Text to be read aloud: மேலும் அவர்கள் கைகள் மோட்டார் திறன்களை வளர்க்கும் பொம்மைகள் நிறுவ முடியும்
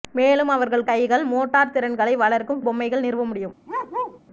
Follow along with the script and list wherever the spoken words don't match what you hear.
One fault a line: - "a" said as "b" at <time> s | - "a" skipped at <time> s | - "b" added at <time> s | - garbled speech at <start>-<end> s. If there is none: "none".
none